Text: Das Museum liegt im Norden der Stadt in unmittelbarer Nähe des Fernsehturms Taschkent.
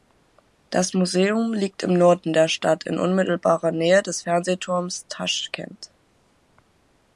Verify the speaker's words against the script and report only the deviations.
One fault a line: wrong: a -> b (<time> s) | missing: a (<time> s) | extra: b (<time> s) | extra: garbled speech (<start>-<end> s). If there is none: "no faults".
no faults